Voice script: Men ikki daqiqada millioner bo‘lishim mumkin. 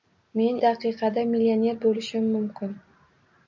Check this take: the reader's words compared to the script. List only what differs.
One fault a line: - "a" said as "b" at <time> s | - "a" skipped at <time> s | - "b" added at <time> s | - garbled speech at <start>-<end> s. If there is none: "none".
- "ikki" skipped at 0.6 s